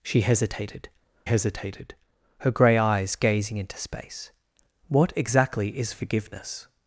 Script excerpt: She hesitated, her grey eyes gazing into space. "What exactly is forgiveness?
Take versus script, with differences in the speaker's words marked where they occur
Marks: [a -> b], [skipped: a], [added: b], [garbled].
She hesitated, [added: hesitated] her grey eyes gazing into space. "What exactly is forgiveness?